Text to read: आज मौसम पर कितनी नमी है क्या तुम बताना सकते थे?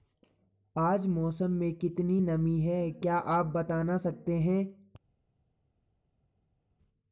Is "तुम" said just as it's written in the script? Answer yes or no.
no